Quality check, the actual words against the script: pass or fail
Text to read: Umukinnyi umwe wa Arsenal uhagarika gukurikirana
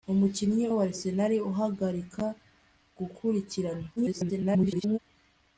fail